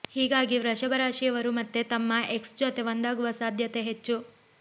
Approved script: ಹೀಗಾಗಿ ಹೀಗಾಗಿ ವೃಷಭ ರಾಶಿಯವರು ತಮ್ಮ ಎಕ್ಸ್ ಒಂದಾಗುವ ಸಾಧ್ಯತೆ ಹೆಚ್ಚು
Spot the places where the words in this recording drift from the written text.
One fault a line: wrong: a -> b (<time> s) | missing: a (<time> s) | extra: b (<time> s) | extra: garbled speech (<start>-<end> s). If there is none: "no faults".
missing: ಹೀಗಾಗಿ (0.6 s)
extra: ಮತ್ತೆ (1.5 s)
extra: ಜೊತೆ (2.6 s)